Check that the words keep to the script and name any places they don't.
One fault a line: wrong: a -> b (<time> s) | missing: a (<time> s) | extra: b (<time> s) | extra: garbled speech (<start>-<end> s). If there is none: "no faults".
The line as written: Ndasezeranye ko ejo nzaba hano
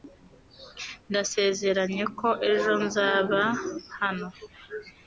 no faults